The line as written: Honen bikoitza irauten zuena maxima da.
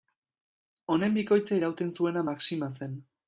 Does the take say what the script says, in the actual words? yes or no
no